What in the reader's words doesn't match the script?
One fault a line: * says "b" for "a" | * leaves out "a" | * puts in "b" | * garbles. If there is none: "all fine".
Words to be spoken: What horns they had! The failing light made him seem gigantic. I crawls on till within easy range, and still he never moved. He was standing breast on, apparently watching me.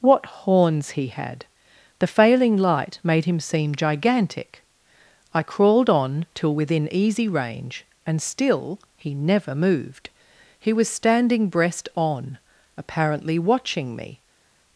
* says "he" for "they"
* says "crawled" for "crawls"